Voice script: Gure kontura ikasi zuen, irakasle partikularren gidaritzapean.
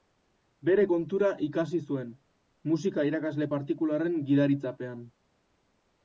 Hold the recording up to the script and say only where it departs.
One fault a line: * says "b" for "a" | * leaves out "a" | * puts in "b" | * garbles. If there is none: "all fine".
* says "Bere" for "Gure"
* puts in "musika"